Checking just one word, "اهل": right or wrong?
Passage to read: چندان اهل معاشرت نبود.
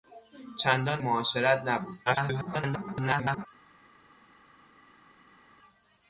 wrong